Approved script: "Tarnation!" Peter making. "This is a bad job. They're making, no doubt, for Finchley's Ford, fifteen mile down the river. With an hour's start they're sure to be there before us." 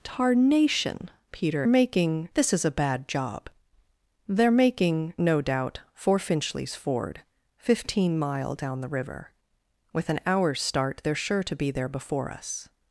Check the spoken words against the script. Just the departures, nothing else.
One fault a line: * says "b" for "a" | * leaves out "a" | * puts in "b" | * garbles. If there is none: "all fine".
all fine